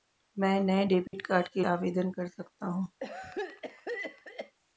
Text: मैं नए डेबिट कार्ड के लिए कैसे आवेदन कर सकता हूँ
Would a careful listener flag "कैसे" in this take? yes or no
yes